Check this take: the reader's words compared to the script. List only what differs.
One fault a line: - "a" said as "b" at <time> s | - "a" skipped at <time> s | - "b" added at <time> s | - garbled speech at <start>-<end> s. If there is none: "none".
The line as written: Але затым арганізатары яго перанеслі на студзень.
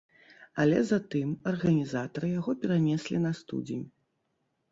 none